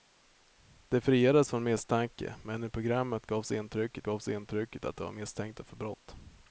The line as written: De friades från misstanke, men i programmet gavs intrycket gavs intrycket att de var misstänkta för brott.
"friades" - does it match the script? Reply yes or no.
yes